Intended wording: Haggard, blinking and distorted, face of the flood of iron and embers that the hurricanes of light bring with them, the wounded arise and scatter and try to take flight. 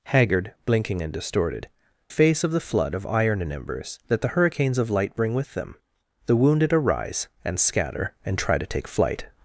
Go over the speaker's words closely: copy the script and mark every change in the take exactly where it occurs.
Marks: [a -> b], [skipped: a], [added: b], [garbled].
Haggard, blinking and distorted, face of the flood of iron and embers that the hurricanes of light bring with them, the wounded arise and scatter and try to take flight.